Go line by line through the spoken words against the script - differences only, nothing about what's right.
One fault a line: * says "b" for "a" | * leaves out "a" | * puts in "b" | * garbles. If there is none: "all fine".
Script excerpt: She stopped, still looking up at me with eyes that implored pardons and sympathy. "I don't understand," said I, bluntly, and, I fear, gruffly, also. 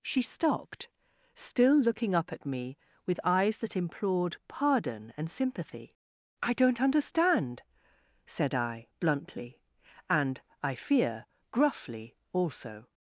* says "pardon" for "pardons"